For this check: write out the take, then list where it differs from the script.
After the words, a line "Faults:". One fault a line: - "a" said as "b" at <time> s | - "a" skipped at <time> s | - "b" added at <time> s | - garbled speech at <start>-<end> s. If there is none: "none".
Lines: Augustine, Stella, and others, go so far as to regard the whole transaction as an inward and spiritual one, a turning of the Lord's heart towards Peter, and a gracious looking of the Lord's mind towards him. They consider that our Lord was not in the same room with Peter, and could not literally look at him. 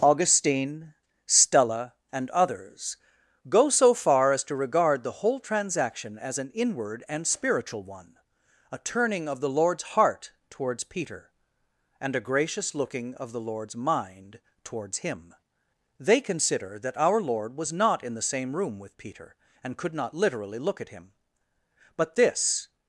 Augustine, Stella, and others, go so far as to regard the whole transaction as an inward and spiritual one, a turning of the Lord's heart towards Peter, and a gracious looking of the Lord's mind towards him. They consider that our Lord was not in the same room with Peter, and could not literally look at him. But this
Faults:
- "But this" added at 22.0 s